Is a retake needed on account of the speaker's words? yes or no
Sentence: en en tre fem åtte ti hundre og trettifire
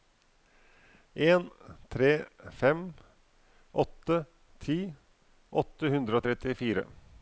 yes